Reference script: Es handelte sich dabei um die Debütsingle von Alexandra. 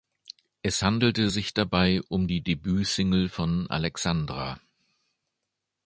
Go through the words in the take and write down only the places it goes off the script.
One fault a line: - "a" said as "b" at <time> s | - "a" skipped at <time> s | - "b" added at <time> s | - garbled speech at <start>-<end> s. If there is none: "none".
none